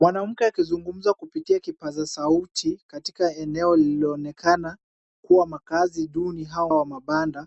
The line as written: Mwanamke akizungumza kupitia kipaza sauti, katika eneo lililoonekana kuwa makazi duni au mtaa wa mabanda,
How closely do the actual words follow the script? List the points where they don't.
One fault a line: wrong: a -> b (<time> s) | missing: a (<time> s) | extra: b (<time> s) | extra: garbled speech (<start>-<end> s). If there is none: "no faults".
missing: mtaa (6.7 s)